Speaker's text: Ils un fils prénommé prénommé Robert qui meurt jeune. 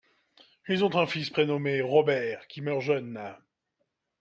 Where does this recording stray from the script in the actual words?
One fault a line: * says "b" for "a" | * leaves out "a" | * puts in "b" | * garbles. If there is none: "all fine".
* puts in "ont"
* leaves out "prénommé"